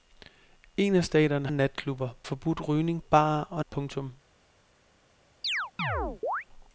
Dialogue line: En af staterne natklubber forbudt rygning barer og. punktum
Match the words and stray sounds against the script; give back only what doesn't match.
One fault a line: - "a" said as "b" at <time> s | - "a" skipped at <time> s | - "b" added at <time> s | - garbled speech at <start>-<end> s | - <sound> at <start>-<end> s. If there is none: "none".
- chirp at 5.4-6.4 s